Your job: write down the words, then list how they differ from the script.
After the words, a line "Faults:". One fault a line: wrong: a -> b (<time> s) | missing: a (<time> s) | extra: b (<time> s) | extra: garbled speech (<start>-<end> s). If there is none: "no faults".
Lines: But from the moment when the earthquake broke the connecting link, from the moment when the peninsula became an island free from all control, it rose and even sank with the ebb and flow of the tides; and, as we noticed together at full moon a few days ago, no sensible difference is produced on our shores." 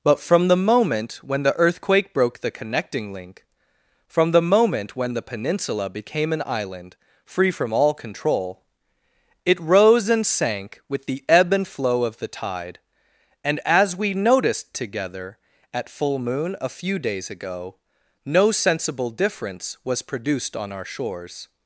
But from the moment when the earthquake broke the connecting link, from the moment when the peninsula became an island free from all control, it rose and sank with the ebb and flow of the tide; and, as we noticed together at full moon a few days ago, no sensible difference was produced on our shores."
Faults:
missing: even (10.2 s)
wrong: tides -> tide (12.3 s)
wrong: is -> was (19.8 s)